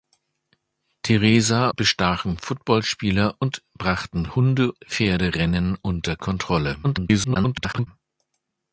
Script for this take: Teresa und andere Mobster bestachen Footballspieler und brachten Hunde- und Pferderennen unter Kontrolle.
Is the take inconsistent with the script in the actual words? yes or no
yes